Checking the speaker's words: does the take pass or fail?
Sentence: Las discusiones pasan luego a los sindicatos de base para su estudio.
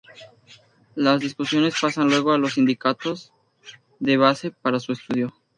pass